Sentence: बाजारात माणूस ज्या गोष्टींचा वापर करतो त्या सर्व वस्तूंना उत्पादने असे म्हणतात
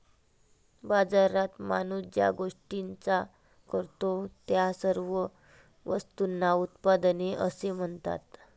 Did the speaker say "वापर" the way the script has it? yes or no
no